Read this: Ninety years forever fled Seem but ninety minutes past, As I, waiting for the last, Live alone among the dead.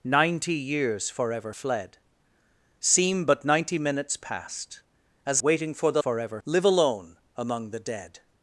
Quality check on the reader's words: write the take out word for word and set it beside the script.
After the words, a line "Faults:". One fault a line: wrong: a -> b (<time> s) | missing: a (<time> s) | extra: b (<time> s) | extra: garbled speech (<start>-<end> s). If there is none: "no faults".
Ninety years forever fled Seem but ninety minutes past, As waiting for the forever, Live alone among the dead.
Faults:
missing: I (5.4 s)
wrong: last -> forever (6.0 s)